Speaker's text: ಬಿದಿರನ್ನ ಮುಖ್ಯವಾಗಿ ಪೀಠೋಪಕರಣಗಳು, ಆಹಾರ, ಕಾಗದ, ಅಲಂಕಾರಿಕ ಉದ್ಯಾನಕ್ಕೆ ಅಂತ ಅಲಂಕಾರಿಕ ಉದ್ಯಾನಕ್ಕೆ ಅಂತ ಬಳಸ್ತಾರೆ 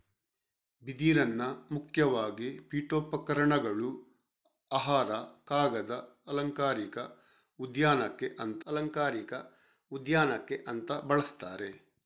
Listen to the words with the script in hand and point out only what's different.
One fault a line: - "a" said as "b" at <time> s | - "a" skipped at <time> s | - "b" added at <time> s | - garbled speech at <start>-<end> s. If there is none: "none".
none